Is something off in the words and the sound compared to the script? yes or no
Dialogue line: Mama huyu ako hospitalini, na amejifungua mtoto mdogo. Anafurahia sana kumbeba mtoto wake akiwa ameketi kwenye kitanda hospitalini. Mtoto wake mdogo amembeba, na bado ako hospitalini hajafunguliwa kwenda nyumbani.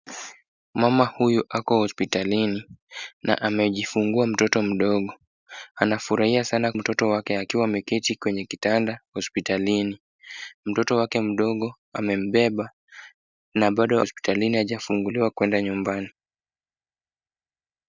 yes